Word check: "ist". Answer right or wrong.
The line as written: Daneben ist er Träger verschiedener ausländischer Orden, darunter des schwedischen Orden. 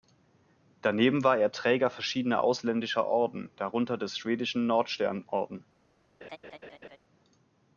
wrong